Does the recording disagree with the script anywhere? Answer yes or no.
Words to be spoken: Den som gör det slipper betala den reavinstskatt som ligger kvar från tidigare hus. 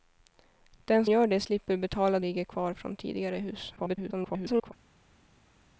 yes